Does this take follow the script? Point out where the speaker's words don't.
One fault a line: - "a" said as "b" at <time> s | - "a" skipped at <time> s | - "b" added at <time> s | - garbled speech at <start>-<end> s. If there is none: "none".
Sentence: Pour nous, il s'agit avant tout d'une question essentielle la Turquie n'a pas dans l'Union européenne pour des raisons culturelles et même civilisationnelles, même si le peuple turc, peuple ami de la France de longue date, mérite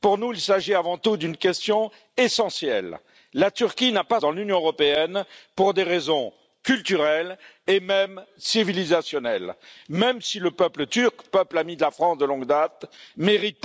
none